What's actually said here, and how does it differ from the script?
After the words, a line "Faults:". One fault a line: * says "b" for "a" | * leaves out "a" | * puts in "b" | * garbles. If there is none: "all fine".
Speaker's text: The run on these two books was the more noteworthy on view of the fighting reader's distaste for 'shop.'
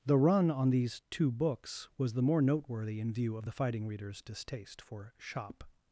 The run on these two books was the more noteworthy in view of the fighting reader's distaste for 'shop.'
Faults:
* says "in" for "on"